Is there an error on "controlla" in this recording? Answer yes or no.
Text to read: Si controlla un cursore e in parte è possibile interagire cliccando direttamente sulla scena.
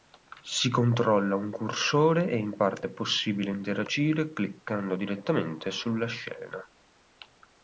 no